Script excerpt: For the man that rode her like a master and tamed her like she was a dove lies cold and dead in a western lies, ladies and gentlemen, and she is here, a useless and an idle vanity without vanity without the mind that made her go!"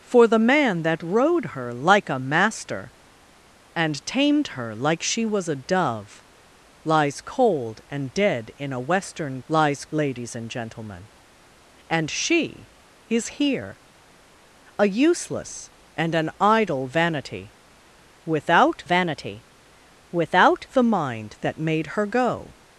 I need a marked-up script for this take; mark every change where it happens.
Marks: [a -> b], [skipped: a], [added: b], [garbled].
For the man that rode her like a master and tamed her like she was a dove lies cold and dead in a western lies, ladies and gentlemen, and she is here, a useless and an idle vanity without vanity without the mind that made her go!"